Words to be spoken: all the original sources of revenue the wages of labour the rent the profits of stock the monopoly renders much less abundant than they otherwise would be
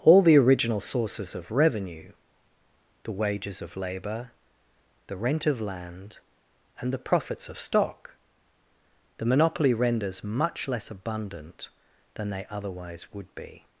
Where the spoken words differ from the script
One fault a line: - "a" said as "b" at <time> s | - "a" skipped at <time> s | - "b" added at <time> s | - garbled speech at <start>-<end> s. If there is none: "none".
- "of land and" added at 5.5 s